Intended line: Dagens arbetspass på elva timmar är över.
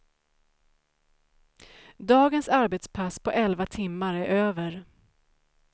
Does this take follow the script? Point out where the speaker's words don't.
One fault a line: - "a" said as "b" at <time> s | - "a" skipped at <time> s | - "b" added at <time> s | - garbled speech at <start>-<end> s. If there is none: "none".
none